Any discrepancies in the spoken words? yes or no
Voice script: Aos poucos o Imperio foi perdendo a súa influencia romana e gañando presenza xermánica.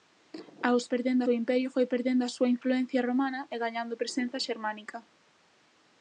yes